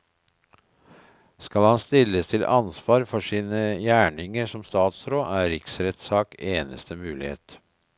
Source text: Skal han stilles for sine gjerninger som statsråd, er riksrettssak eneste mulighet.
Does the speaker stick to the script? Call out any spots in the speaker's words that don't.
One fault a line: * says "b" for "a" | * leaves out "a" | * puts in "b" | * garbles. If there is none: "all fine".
* puts in "til ansvar"